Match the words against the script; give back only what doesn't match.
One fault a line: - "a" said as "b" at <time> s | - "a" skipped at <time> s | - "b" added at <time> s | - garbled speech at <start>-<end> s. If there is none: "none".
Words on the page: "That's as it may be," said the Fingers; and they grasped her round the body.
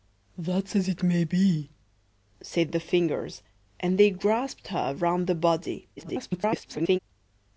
- garbled speech at 6.0-7.0 s